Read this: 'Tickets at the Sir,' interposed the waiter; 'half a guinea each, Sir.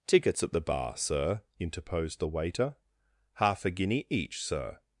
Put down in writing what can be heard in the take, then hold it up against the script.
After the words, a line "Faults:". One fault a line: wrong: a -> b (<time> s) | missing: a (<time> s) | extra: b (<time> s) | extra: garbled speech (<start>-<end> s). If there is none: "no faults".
'Tickets at the bar, Sir,' interposed the waiter; 'half a guinea each, Sir.
Faults:
extra: bar (0.6 s)